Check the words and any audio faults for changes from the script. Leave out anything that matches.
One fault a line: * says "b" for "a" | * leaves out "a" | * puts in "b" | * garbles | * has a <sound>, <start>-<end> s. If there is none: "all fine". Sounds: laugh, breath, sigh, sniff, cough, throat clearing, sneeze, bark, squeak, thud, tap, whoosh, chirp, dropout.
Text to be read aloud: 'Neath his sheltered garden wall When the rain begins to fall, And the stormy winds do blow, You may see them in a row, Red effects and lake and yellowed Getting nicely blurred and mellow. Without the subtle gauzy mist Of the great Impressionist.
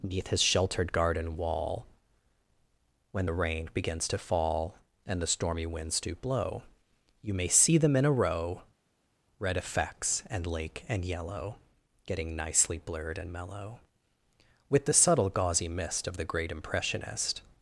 * says "yellow" for "yellowed"
* says "With" for "Without"